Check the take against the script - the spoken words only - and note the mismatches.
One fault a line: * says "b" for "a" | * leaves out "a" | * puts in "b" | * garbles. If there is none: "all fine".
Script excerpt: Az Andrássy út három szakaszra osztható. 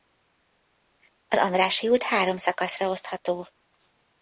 all fine